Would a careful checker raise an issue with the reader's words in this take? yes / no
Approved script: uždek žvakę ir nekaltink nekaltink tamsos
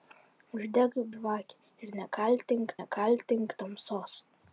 no